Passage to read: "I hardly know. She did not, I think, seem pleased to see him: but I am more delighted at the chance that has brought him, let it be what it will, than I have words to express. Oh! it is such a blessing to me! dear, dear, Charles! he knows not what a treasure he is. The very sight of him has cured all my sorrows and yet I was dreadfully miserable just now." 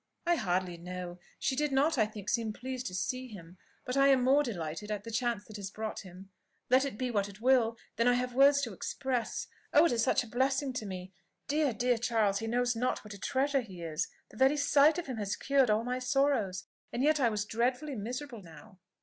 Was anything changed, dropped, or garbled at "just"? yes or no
yes